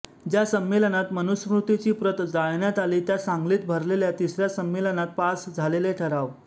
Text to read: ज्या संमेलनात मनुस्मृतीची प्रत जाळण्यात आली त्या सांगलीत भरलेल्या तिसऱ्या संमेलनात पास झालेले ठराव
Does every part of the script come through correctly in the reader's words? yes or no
yes